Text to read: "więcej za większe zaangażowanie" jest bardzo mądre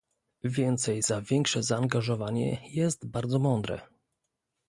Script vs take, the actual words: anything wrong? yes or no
no